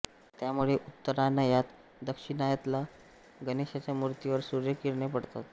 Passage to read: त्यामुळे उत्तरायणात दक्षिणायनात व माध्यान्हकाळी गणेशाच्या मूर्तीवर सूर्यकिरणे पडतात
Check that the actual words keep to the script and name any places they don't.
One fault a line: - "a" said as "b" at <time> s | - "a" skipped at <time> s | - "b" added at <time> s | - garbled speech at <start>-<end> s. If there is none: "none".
- "व माध्यान्हकाळी" skipped at 3.4 s